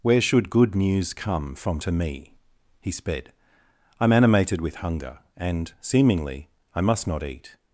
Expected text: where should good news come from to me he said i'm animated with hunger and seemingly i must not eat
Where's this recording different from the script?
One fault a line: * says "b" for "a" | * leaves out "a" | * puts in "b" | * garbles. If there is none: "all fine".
* says "sped" for "said"